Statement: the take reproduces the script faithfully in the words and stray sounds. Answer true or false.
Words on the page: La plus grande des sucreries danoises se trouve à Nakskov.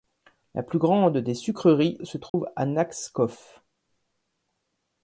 false